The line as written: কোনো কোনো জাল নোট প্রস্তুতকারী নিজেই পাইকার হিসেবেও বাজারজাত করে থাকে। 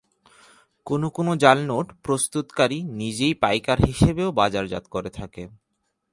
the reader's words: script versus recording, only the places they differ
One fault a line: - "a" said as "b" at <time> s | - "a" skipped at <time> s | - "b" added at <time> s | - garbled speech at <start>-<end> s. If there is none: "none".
none